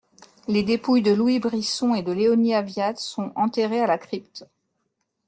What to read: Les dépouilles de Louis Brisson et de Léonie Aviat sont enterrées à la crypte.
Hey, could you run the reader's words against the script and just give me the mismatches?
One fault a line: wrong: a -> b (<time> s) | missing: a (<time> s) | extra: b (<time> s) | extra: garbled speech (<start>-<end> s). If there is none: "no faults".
no faults